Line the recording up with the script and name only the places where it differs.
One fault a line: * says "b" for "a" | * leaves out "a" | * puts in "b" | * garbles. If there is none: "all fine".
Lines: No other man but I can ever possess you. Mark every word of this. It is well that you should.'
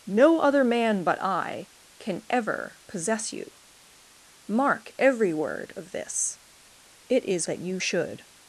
* leaves out "well"